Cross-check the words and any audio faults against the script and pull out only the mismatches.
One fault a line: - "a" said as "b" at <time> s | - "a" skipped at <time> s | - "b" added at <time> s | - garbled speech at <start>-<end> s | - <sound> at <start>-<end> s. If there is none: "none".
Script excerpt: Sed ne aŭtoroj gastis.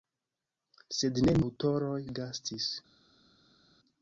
none